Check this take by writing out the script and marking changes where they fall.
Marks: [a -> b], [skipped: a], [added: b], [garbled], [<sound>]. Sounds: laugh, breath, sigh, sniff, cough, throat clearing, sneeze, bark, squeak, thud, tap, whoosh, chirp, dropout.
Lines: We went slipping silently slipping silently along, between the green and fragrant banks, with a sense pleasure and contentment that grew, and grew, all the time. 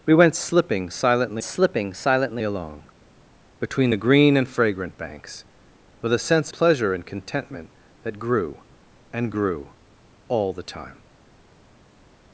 We went slipping silently slipping silently along, between the green and fragrant banks, with a sense pleasure and contentment that grew, and grew, all the time.